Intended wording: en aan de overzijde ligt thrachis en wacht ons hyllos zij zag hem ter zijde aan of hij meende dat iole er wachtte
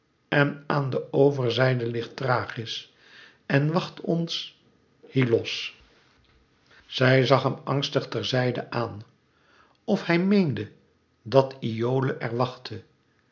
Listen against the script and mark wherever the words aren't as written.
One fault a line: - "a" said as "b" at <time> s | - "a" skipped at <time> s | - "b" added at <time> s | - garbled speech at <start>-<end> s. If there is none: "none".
- "angstig" added at 7.6 s